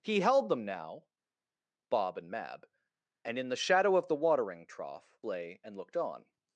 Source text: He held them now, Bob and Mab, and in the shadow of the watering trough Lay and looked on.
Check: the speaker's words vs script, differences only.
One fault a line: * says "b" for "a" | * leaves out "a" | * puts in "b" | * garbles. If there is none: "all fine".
all fine